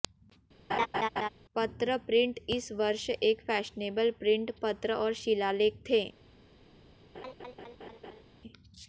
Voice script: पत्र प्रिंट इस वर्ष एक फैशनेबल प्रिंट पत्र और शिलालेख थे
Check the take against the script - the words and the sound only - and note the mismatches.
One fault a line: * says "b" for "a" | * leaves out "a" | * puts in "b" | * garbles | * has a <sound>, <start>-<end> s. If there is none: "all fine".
* has a laugh, 0.7-1.3 s
* has a laugh, 7.1-8.2 s